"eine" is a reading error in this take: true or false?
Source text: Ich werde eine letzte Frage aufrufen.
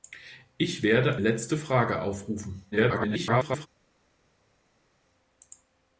true